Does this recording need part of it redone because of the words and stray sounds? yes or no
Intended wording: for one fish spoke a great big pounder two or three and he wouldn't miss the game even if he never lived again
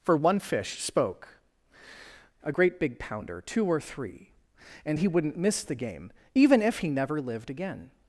no